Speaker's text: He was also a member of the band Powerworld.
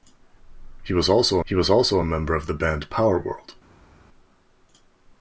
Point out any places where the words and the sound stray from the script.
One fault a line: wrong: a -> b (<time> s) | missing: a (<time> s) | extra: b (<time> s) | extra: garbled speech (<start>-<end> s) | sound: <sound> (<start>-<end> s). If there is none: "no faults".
extra: he was also (1.4 s)